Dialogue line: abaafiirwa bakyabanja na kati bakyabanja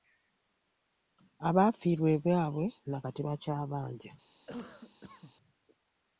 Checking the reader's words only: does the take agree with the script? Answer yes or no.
no